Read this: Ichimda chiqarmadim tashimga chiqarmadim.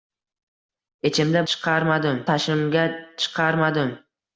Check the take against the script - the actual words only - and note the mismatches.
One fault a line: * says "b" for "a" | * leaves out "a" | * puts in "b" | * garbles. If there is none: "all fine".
all fine